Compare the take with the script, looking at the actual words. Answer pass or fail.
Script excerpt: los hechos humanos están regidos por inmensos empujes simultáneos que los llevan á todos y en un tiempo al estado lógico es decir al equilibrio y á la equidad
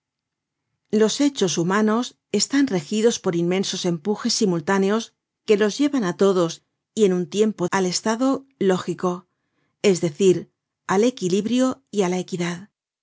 pass